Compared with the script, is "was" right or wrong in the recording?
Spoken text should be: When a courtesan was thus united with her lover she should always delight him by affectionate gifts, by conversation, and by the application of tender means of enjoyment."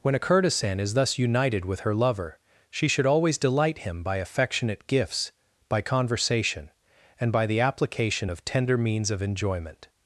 wrong